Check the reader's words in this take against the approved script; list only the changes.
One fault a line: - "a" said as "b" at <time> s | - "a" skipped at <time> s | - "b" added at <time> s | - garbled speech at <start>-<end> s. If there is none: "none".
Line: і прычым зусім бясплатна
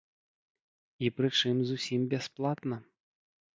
none